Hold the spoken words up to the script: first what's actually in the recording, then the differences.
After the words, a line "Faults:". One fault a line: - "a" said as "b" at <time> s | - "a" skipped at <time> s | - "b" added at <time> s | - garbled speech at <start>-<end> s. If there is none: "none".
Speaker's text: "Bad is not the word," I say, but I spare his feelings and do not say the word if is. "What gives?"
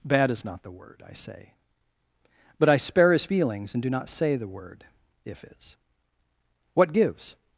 "Bad is not the word," I say, but I spare his feelings and do not say the word if is. "What gives?"
Faults:
none